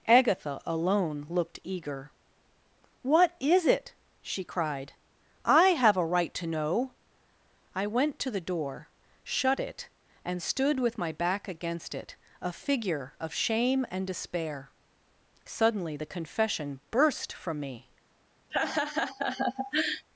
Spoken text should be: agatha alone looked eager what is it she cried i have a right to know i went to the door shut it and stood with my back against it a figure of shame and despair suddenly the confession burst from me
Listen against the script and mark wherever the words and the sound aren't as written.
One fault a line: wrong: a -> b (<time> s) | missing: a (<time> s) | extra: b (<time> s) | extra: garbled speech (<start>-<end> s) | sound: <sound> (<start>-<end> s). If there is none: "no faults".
sound: laugh (18.5-20.0 s)